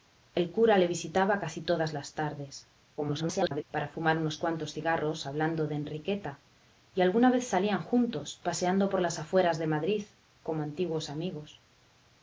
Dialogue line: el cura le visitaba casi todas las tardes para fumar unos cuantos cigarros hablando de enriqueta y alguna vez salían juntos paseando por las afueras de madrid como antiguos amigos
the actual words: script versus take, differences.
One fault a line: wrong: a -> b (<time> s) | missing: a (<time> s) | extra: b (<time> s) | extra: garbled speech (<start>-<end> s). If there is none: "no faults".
extra: garbled speech (3.0-3.6 s)